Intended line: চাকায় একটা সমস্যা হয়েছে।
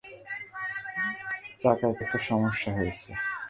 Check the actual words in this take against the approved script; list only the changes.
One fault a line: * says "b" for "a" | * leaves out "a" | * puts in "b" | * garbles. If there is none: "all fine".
all fine